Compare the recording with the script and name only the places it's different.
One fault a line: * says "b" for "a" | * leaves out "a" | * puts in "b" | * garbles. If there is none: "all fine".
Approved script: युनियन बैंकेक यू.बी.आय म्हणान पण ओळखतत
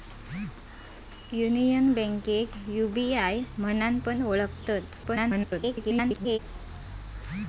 * garbles